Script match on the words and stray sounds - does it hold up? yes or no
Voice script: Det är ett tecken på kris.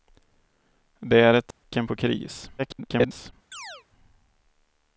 no